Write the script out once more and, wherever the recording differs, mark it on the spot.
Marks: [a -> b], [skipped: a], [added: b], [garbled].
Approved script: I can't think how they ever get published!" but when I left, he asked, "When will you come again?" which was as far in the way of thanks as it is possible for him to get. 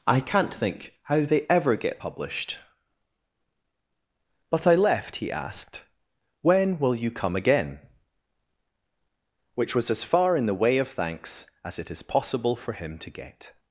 I can't think how they ever get published!" but [skipped: when] I left, he asked, "When will you come again?" which was as far in the way of thanks as it is possible for him to get.